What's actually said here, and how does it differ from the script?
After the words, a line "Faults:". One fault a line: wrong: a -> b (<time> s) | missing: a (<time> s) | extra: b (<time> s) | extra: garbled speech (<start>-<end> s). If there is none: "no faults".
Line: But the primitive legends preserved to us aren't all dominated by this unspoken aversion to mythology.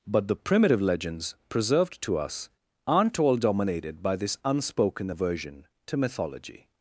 But the primitive legends preserved to us aren't all dominated by this unspoken aversion to mythology.
Faults:
no faults